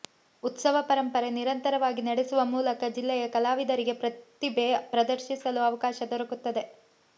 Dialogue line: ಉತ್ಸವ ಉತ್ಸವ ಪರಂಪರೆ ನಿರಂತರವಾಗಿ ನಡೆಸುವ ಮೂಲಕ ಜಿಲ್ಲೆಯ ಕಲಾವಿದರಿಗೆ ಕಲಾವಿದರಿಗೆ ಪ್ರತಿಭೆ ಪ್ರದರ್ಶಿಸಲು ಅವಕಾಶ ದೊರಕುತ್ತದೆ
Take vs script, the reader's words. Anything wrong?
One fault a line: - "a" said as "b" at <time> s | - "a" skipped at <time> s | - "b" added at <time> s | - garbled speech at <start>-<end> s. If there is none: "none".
- "ಉತ್ಸವ" skipped at 0.8 s
- "ಕಲಾವಿದರಿಗೆ" skipped at 3.9 s